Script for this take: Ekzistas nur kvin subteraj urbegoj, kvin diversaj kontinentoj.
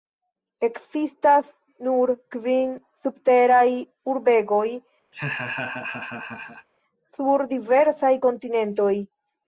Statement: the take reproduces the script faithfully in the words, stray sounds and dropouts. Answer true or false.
false